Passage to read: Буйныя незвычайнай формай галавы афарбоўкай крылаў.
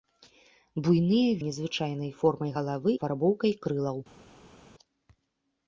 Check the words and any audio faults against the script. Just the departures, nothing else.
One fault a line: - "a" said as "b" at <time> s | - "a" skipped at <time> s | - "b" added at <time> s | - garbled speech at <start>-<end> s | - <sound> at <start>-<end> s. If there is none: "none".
none